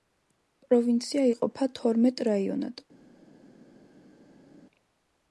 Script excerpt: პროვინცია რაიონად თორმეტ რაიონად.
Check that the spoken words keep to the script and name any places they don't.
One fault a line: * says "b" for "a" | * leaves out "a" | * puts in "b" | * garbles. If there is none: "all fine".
* says "იყოფა" for "რაიონად"